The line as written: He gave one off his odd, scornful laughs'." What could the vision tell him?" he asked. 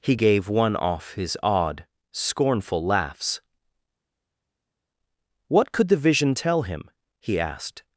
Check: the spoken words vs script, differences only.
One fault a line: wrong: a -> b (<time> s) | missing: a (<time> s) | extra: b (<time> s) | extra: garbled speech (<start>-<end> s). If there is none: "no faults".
no faults